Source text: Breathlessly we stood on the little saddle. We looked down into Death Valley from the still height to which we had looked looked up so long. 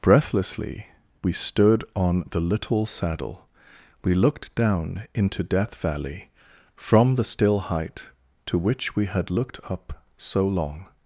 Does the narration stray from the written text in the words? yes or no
yes